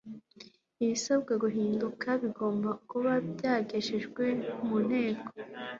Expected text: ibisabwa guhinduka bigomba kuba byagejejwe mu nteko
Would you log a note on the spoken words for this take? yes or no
no